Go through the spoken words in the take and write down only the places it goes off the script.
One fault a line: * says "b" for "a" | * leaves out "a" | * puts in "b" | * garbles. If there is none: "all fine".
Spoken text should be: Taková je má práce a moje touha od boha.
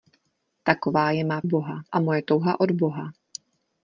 * says "boha" for "práce"